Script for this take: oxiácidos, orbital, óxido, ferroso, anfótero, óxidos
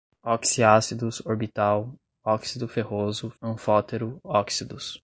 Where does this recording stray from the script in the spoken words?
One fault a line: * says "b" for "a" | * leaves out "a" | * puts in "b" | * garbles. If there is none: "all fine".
all fine